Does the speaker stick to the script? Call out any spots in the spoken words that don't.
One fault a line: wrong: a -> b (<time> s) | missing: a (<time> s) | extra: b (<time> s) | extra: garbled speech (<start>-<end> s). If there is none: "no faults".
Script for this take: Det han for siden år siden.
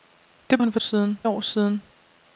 no faults